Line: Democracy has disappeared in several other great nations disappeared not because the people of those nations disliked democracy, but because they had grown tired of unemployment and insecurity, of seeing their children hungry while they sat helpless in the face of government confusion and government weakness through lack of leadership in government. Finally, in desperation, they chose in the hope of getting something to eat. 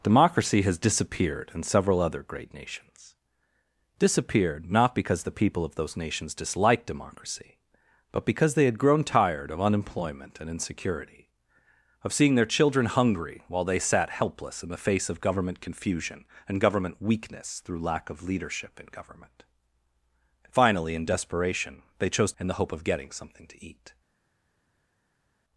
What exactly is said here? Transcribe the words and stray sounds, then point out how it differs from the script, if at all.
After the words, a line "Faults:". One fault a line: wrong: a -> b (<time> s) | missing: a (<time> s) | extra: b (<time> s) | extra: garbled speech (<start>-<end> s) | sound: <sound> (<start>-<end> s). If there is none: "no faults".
Democracy has disappeared in several other great nations disappeared not because the people of those nations disliked democracy, but because they had grown tired of unemployment and insecurity, of seeing their children hungry while they sat helpless in the face of government confusion and government weakness through lack of leadership in government. Finally, in desperation, they chose in the hope of getting something to eat.
Faults:
no faults